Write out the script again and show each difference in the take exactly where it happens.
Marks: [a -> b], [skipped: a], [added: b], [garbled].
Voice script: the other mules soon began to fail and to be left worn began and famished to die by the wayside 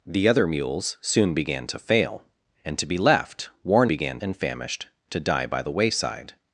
the other mules soon began to fail and to be left worn began and famished to die by the wayside